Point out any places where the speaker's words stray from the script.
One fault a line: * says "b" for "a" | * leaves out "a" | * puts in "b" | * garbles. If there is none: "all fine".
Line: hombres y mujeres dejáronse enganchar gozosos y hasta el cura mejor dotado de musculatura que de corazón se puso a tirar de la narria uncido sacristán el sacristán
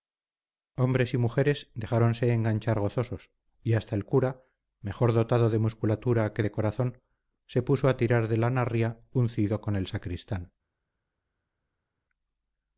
* says "con" for "sacristán"